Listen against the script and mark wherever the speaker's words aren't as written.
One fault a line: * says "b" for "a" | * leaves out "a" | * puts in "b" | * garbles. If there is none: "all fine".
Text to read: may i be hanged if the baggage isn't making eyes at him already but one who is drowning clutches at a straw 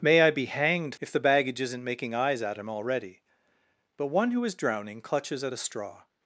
all fine